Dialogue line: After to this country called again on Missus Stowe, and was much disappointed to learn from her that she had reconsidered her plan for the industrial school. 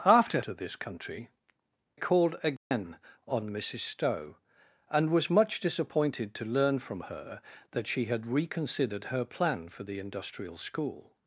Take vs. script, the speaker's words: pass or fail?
pass